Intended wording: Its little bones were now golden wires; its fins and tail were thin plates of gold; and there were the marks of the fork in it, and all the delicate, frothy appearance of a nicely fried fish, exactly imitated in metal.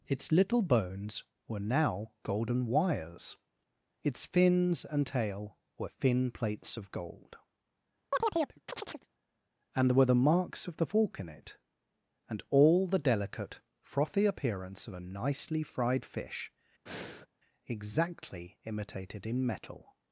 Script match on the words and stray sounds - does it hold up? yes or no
no